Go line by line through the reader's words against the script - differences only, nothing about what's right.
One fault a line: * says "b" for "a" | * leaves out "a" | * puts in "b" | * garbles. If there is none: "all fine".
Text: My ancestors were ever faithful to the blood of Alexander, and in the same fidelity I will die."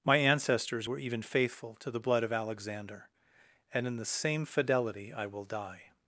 * says "even" for "ever"